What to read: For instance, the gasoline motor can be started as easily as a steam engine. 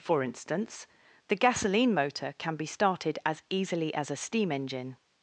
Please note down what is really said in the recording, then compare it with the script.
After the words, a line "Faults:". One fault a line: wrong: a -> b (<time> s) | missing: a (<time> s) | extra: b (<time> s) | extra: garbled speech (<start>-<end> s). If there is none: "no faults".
For instance, the gasoline motor can be started as easily as a steam engine.
Faults:
no faults